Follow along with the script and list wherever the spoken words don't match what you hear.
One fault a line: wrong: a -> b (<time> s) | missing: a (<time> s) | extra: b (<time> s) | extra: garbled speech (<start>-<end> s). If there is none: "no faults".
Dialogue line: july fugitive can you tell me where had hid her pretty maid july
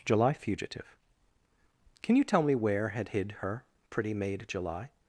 no faults